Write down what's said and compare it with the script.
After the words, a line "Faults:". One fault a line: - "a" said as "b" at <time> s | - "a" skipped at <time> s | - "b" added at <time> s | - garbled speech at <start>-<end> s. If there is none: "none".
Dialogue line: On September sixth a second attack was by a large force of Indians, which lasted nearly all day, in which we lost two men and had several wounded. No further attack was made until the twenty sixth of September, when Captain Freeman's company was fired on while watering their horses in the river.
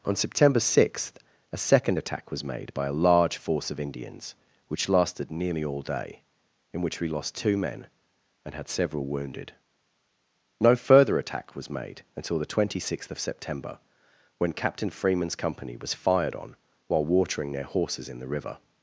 On September sixth a second attack was made by a large force of Indians, which lasted nearly all day, in which we lost two men and had several wounded. No further attack was made until the twenty sixth of September, when Captain Freeman's company was fired on while watering their horses in the river.
Faults:
- "made" added at 2.4 s